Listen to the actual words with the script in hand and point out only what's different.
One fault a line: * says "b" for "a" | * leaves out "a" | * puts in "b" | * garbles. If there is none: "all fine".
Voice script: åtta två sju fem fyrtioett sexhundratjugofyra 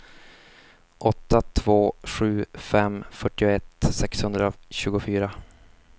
all fine